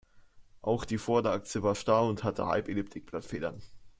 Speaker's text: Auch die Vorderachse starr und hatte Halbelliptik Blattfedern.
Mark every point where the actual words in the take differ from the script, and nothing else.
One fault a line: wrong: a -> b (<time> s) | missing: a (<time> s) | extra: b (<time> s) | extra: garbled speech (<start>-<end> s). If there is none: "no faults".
extra: war (1.6 s)